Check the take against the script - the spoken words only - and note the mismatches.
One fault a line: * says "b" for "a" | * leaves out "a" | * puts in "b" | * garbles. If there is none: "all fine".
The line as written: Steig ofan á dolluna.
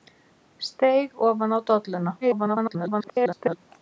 * garbles